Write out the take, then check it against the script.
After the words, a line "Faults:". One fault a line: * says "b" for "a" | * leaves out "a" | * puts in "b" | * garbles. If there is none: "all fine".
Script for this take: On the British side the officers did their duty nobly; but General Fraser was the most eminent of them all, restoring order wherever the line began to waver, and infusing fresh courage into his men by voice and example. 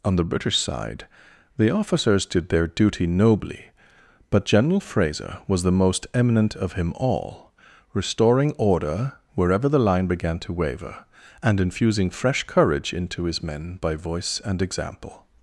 On the British side the officers did their duty nobly; but General Fraser was the most eminent of him all, restoring order wherever the line began to waver, and infusing fresh courage into his men by voice and example.
Faults:
* says "him" for "them"